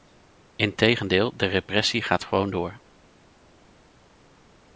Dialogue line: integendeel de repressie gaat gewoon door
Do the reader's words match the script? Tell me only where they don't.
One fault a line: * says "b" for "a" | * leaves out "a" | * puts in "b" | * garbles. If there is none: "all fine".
all fine